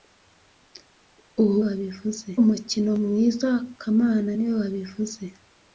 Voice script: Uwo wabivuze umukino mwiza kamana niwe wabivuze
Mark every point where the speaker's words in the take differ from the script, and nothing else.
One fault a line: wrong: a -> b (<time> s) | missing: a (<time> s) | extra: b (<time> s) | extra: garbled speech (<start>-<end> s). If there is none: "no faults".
no faults